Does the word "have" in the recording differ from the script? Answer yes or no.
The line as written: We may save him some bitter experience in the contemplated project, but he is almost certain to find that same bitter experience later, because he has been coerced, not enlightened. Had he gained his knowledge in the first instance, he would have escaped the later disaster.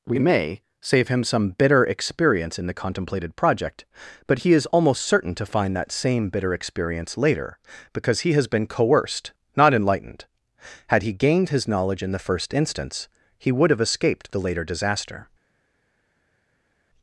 no